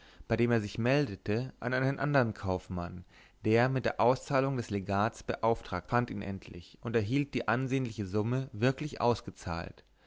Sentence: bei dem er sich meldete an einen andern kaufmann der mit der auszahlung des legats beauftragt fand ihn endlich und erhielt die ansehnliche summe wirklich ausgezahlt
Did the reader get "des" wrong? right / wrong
right